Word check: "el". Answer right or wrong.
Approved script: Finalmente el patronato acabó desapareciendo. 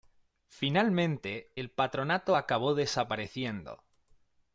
right